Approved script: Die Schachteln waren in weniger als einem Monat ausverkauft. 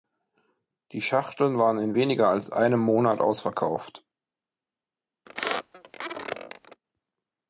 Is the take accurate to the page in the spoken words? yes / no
yes